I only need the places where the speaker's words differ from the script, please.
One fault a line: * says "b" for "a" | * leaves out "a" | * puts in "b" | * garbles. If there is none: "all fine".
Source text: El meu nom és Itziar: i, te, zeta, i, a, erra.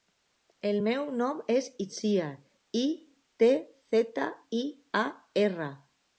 all fine